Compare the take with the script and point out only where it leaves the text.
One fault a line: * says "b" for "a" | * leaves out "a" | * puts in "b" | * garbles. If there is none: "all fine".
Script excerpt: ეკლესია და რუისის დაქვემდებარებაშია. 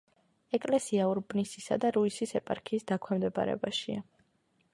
* puts in "ურბნისისა"
* puts in "ეპარქიის"